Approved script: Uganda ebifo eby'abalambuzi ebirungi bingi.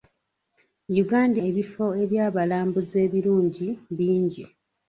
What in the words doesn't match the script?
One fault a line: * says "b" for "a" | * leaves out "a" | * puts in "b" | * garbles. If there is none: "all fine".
all fine